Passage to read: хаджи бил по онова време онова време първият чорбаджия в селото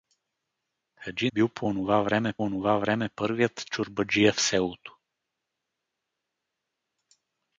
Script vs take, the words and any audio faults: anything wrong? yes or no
no